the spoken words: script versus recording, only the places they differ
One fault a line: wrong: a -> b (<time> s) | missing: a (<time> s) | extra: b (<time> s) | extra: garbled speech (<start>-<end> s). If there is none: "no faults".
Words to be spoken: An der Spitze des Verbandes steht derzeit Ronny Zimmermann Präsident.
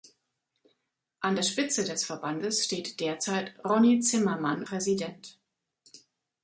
no faults